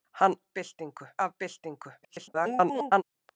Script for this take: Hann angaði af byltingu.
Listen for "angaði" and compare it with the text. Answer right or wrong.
wrong